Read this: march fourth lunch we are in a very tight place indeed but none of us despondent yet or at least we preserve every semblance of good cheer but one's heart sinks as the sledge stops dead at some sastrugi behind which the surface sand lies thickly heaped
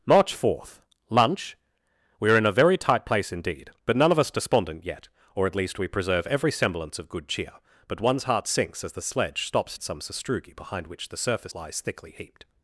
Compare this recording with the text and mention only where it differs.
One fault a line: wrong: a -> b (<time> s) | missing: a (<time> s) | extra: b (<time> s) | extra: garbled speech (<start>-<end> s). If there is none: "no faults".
missing: dead (9.8 s)
missing: sand (11.5 s)